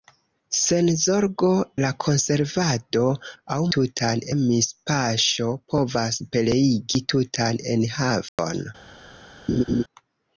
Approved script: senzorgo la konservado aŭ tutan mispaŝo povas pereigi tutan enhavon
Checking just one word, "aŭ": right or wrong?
right